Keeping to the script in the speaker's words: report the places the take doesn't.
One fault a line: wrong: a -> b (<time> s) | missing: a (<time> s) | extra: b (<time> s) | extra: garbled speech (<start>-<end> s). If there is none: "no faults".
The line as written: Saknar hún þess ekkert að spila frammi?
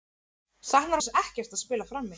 missing: hún (1.0 s)